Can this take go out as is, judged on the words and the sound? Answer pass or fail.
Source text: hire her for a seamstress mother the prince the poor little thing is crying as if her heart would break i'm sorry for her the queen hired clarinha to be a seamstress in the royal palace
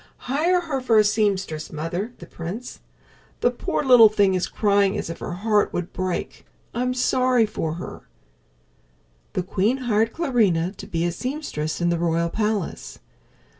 pass